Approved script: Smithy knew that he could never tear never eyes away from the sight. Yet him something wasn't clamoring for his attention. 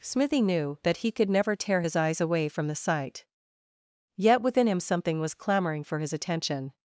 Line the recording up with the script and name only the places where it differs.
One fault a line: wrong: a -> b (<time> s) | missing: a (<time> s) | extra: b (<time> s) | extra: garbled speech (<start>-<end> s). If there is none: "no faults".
wrong: never -> his (1.8 s)
extra: within (4.4 s)
wrong: wasn't -> was (5.2 s)